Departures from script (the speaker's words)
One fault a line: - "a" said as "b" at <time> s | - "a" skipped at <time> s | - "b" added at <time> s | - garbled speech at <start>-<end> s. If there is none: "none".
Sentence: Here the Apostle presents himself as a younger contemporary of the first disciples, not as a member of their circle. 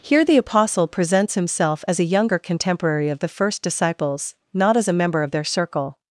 none